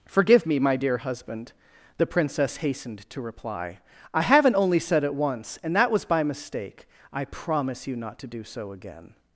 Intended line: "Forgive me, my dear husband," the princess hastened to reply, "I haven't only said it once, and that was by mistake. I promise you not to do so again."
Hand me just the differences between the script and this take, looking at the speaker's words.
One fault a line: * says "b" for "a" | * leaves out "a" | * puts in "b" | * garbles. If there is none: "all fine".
all fine